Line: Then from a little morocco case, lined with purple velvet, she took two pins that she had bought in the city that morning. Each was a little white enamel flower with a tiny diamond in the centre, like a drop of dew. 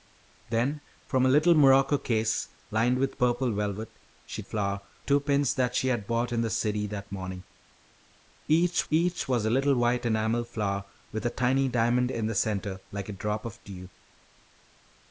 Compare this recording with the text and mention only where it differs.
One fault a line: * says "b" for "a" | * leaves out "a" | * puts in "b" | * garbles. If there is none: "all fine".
* says "flower" for "took"
* puts in "each"